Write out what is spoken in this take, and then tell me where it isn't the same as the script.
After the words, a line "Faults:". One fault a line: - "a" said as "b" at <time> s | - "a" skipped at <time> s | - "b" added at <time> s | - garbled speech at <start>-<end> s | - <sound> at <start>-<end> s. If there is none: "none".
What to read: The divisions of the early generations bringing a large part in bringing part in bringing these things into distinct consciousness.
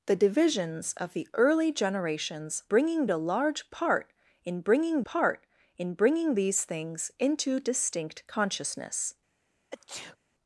The divisions of the early generations bringing a large part in bringing part in bringing these things into distinct consciousness.
Faults:
- sneeze at 9.7-10.2 s